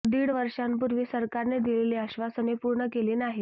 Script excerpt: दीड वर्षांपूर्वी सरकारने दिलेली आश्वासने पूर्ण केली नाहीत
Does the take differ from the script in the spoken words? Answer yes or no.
no